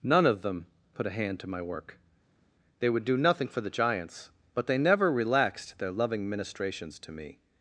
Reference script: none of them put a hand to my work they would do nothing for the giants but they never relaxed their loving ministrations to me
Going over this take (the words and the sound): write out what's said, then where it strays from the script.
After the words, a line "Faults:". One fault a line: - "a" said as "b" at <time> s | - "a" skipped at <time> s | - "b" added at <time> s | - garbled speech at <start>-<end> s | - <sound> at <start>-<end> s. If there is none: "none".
none of them put a hand to my work they would do nothing for the giants but they never relaxed their loving ministrations to me
Faults:
none